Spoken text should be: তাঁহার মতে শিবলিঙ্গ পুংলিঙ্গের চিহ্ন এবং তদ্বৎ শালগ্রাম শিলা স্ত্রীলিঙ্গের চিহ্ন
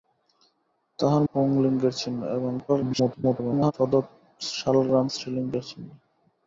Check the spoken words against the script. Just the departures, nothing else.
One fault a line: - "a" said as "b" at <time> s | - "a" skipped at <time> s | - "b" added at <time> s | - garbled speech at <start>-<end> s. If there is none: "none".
- "মতে শিবলিঙ্গ" skipped at 1.2 s
- garbled speech at 2.7-3.7 s
- "শিলা" skipped at 5.1 s